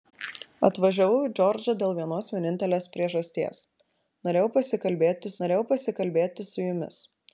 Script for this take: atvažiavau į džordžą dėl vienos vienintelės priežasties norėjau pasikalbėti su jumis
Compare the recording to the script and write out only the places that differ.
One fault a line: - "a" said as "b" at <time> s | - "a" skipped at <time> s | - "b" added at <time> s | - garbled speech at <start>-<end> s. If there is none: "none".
- "norėjau pasikalbėti" added at 5.4 s